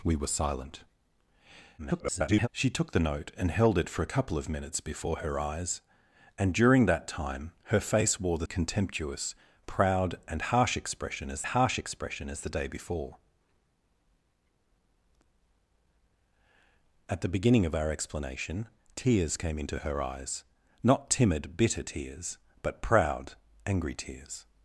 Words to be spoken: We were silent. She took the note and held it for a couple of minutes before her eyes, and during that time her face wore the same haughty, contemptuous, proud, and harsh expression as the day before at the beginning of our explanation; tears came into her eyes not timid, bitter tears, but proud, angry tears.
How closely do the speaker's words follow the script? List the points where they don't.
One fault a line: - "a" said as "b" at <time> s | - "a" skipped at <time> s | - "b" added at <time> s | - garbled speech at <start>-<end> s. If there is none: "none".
- garbled speech at 1.8-2.5 s
- "same haughty" skipped at 8.5 s
- "harsh expression as" added at 11.4 s